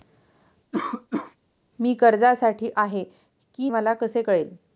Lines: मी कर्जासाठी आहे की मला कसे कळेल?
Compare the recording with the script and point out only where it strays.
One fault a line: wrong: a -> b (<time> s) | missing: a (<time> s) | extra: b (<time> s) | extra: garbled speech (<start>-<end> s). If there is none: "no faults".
no faults